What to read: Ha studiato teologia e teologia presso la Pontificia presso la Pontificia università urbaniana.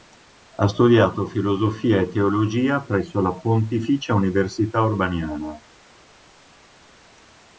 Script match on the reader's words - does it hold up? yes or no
no